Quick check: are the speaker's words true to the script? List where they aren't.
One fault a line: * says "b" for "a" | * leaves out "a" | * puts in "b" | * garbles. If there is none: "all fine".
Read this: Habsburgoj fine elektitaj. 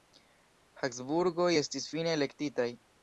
* puts in "estis"